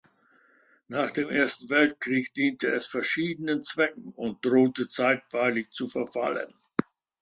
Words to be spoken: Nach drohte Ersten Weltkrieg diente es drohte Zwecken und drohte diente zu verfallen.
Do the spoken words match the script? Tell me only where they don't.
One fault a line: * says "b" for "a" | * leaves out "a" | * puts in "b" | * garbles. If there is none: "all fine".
* says "dem" for "drohte"
* says "verschiedenen" for "drohte"
* says "zeitweilig" for "diente"